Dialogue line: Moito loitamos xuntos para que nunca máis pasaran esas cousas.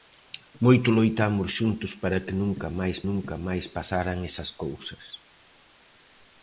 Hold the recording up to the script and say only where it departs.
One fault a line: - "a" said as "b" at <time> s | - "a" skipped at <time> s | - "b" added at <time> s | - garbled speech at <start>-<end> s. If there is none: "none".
- "nunca máis" added at 3.1 s